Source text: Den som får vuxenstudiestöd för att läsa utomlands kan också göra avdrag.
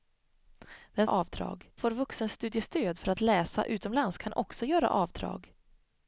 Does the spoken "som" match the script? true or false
false